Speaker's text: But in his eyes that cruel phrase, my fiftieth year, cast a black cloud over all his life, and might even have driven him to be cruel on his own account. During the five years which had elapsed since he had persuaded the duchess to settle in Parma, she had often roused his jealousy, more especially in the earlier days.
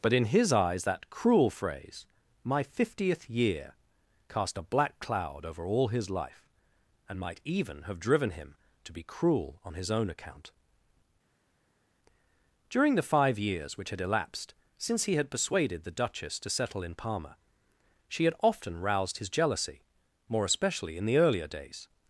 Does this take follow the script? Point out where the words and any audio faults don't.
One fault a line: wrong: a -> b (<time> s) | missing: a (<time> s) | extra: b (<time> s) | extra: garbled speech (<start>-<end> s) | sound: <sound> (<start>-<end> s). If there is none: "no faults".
no faults